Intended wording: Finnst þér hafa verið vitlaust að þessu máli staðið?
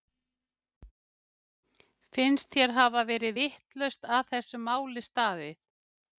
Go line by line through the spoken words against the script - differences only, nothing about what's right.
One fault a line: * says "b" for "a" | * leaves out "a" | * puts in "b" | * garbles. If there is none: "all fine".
all fine